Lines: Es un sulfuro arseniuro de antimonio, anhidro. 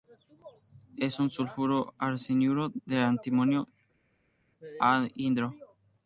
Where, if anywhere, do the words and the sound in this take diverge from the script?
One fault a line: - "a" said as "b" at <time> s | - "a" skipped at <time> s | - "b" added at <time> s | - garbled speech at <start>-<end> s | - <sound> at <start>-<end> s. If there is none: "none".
none